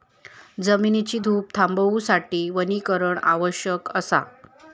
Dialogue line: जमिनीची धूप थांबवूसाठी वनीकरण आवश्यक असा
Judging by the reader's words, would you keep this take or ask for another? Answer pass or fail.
pass